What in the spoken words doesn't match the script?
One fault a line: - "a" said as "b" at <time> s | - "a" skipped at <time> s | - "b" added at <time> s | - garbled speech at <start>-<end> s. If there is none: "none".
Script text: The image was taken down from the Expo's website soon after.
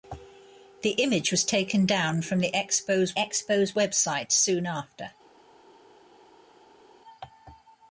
- "Expo's" added at 3.2 s